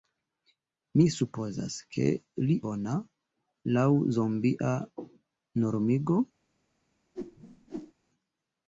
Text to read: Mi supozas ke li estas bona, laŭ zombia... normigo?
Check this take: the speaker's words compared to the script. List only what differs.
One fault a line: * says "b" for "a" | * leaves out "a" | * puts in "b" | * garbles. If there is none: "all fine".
* leaves out "estas"